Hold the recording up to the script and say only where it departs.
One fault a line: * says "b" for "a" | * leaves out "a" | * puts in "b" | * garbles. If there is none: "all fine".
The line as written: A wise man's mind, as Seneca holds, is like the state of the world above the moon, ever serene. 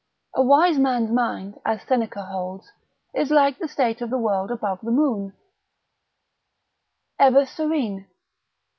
all fine